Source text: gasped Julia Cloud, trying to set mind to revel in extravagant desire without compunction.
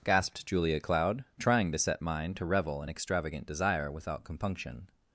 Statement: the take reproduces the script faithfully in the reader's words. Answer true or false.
true